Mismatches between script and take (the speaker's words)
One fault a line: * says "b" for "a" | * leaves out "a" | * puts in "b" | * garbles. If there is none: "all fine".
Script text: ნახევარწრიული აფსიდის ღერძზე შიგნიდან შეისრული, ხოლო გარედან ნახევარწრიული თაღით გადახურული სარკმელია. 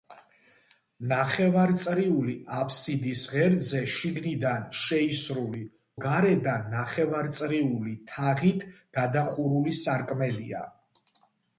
* leaves out "ხოლო"